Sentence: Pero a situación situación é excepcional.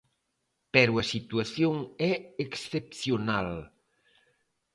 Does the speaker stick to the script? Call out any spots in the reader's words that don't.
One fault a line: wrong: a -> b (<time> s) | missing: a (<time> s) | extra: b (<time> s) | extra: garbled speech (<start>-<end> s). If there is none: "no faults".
missing: situación (1.7 s)